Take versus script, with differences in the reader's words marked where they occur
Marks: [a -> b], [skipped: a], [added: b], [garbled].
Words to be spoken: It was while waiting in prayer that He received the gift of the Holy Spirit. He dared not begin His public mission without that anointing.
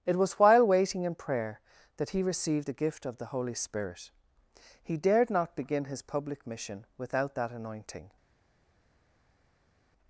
It was while waiting in prayer that He received the gift of the Holy Spirit. He dared not begin His public mission without that anointing.